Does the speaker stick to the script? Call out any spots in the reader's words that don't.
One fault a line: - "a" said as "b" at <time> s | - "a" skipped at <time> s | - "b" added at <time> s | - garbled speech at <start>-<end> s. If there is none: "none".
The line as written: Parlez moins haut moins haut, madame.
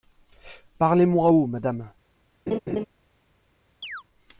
- "moins haut" skipped at 1.5 s